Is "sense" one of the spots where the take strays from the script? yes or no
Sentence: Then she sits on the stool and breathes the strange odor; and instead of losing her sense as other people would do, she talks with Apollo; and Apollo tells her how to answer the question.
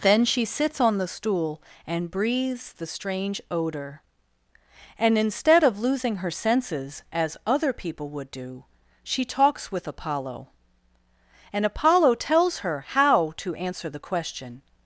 yes